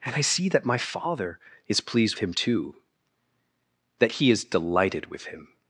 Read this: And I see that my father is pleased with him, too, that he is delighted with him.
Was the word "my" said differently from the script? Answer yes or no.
no